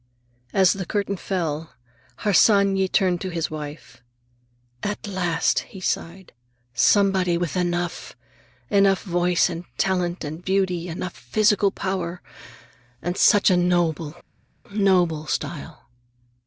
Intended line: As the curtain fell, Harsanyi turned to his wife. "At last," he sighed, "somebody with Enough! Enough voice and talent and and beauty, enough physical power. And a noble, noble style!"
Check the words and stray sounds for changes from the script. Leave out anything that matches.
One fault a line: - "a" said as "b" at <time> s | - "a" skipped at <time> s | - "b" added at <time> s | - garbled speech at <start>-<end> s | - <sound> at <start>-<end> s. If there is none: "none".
- "and" skipped at 10.4 s
- "such" added at 13.2 s